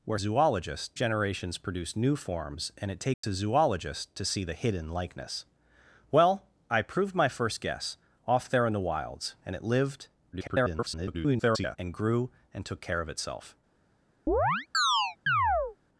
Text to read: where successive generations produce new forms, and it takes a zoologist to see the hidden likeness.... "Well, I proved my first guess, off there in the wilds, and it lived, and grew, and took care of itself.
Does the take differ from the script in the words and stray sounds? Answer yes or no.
yes